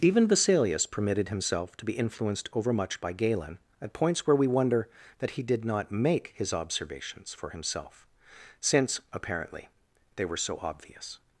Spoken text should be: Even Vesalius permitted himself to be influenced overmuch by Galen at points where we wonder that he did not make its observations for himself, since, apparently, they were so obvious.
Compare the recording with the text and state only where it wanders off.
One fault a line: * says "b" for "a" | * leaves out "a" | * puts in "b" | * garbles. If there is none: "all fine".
* says "his" for "its"